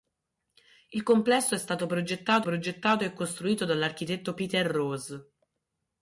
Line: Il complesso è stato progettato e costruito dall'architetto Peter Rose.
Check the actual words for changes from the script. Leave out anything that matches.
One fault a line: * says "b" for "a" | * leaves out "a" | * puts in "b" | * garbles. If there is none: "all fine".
* puts in "progettato"